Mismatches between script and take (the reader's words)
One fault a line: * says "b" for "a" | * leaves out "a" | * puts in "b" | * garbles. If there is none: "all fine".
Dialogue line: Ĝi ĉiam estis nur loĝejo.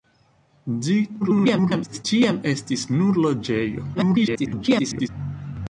* garbles
* garbles